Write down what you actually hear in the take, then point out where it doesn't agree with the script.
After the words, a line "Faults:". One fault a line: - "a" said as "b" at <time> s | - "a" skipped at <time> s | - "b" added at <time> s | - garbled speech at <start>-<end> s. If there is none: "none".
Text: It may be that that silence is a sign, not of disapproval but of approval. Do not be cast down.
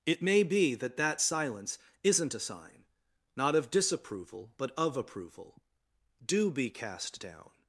It may be that that silence isn't a sign, not of disapproval but of approval. Do be cast down.
Faults:
- "is" said as "isn't" at 2.0 s
- "not" skipped at 6.5 s